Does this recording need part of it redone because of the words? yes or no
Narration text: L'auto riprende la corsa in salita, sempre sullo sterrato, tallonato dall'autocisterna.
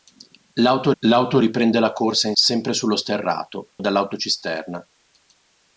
yes